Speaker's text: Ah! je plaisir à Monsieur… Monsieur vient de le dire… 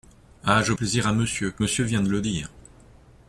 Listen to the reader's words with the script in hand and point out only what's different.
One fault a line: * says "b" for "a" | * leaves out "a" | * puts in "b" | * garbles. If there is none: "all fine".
all fine